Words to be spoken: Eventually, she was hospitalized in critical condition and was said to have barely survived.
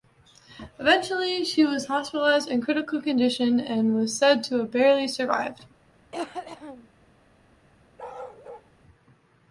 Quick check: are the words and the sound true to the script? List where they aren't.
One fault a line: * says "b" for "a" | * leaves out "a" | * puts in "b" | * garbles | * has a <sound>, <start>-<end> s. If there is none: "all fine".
* has a cough, 6.1-6.9 s
* has a bark, 8.0-8.7 s